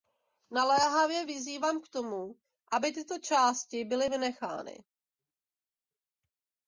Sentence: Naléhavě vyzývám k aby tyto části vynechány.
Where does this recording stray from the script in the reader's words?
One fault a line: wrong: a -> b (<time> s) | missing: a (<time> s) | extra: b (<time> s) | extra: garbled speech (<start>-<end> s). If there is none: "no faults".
extra: tomu (1.9 s)
extra: byly (3.8 s)